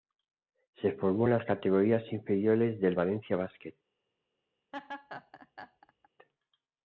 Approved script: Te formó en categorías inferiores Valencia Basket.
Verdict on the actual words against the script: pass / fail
fail